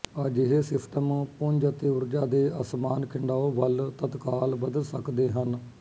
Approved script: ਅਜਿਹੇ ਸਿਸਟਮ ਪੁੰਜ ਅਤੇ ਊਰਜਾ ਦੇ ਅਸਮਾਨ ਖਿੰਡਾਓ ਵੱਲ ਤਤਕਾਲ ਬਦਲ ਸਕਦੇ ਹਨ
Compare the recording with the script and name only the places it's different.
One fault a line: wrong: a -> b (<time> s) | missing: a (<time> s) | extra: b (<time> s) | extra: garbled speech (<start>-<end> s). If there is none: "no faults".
no faults